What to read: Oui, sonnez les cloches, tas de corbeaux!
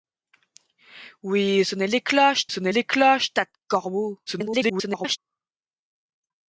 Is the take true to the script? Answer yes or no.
no